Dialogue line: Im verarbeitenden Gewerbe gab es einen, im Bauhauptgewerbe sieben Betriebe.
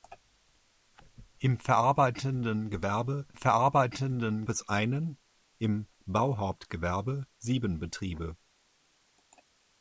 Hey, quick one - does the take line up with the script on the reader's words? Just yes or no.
no